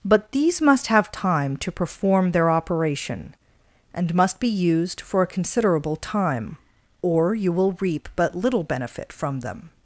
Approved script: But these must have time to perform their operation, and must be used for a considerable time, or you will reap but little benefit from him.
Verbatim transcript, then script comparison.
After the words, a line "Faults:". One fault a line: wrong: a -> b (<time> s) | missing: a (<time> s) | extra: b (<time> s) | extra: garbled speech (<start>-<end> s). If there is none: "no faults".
But these must have time to perform their operation, and must be used for a considerable time, or you will reap but little benefit from them.
Faults:
wrong: him -> them (9.4 s)